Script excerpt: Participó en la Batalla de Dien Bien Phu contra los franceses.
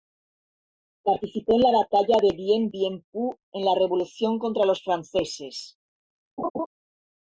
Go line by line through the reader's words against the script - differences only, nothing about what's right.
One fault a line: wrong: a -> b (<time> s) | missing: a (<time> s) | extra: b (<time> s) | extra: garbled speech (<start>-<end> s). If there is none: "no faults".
extra: en la revolución (3.5 s)